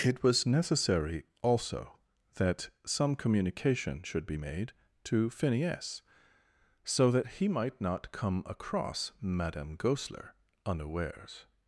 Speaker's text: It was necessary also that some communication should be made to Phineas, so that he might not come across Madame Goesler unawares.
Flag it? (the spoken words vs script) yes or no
no